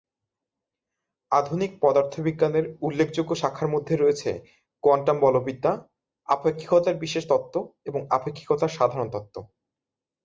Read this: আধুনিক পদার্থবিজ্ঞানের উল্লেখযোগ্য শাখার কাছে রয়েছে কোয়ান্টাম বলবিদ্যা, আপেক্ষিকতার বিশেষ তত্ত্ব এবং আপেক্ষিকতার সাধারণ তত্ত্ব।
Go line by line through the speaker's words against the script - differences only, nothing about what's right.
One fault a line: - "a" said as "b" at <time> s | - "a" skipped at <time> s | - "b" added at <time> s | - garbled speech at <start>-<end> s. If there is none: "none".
- "কাছে" said as "মধ্যে" at 3.7 s